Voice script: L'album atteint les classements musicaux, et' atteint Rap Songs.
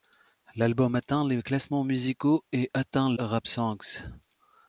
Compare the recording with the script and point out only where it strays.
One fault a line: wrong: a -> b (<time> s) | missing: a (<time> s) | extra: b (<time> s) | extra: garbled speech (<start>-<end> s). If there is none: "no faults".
no faults